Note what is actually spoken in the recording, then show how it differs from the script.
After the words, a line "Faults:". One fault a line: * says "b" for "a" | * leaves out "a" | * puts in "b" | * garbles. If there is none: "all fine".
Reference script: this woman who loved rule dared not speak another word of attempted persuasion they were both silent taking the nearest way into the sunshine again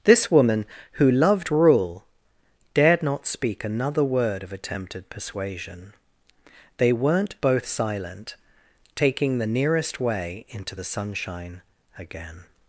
this woman who loved rule dared not speak another word of attempted persuasion they weren't both silent taking the nearest way into the sunshine again
Faults:
* says "weren't" for "were"